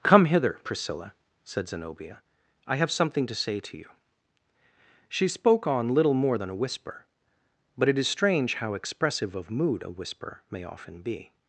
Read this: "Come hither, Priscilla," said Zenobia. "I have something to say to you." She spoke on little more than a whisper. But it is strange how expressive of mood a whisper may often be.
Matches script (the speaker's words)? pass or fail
pass